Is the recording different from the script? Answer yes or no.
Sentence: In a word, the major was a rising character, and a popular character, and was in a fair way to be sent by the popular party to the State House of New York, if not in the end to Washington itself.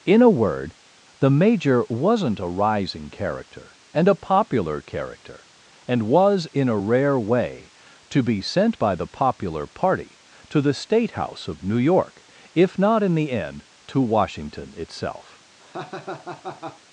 yes